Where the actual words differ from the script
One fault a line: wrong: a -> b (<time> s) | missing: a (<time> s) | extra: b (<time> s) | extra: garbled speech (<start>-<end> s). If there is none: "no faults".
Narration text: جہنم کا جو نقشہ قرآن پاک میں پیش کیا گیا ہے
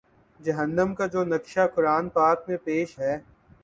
missing: کیا گیا (3.0 s)